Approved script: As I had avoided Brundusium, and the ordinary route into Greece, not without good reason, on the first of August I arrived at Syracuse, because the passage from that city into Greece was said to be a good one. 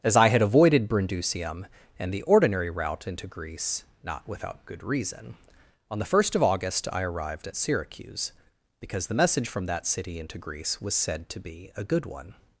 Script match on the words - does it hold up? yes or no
no